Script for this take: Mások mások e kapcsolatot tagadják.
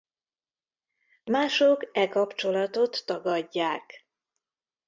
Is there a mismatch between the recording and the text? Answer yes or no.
yes